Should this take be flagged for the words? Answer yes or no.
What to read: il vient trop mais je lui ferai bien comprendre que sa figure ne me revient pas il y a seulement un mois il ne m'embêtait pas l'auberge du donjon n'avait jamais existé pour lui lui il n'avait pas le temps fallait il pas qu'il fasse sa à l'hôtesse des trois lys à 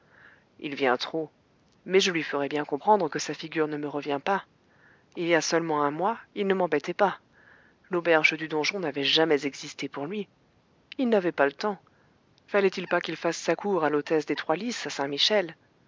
yes